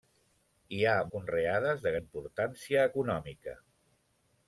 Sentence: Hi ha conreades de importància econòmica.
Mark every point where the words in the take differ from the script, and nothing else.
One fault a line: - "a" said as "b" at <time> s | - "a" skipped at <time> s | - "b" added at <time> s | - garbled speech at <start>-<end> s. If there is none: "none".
none